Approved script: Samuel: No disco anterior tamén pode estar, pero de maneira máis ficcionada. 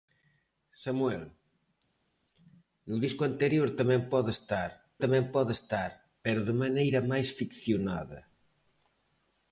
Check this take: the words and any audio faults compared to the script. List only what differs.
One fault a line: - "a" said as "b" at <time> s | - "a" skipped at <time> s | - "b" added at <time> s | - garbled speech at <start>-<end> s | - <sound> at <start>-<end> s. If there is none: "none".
- "tamén pode estar" added at 5.0 s